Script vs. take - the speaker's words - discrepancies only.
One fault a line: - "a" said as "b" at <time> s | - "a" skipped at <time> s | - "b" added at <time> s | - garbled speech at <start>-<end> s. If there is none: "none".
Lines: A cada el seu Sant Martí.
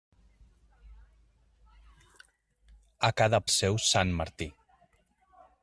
none